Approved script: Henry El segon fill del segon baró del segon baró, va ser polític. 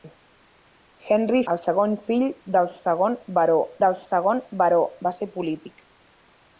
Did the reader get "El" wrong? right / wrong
right